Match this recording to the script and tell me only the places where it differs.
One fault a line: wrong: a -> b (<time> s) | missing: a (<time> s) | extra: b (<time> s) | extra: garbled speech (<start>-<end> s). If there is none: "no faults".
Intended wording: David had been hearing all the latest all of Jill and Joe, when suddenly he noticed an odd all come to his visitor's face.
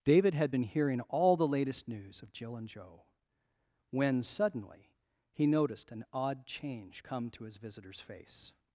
wrong: all -> news (1.9 s)
wrong: all -> change (6.5 s)